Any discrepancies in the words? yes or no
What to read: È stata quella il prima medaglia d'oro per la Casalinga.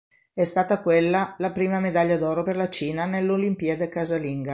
yes